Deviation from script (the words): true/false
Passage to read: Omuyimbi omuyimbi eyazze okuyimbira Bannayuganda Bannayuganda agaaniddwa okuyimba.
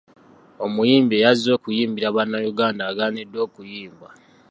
true